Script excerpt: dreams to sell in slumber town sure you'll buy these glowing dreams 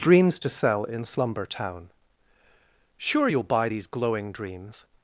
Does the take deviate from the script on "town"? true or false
false